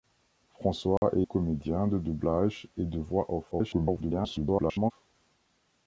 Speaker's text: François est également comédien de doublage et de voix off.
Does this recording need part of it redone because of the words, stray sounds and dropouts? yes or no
yes